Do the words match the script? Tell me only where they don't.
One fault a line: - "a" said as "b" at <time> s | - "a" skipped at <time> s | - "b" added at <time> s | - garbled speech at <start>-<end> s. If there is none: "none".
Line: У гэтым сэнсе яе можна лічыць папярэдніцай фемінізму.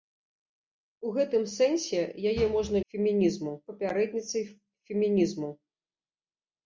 - "лічыць" said as "фемінізму" at 2.9 s